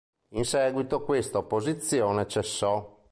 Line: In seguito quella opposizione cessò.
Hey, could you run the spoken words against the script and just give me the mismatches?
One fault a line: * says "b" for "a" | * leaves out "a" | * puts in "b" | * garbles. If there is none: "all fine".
* says "questa" for "quella"